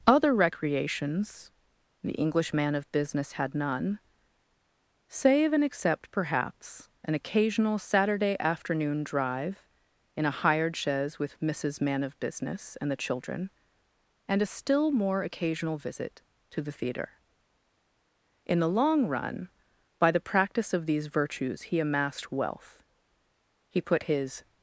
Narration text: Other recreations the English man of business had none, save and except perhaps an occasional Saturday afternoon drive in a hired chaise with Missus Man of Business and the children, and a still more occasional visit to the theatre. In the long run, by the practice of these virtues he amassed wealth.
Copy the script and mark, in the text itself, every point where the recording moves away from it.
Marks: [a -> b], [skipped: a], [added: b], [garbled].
Other recreations the English man of business had none, save and except perhaps an occasional Saturday afternoon drive in a hired chaise with Missus Man of Business and the children, and a still more occasional visit to the theatre. In the long run, by the practice of these virtues he amassed wealth. [added: He put his]